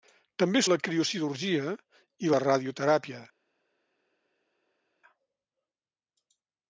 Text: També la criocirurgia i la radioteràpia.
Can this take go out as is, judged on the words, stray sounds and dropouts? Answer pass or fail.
pass